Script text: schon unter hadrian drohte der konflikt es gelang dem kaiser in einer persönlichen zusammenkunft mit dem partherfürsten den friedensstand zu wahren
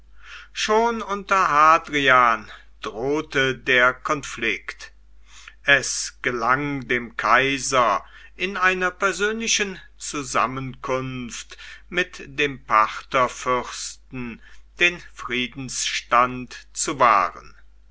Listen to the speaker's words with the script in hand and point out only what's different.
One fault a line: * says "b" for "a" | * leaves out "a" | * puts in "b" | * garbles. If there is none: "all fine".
all fine